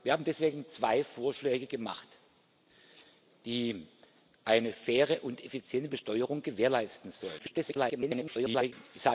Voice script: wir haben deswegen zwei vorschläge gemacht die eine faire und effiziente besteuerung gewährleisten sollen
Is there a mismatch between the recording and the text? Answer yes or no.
yes